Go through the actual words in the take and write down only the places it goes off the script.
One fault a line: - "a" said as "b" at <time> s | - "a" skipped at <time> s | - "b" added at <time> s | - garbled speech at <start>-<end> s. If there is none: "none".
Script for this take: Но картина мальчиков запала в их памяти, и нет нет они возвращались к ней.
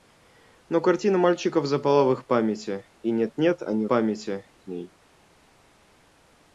- "возвращались" said as "памяти" at 3.8 s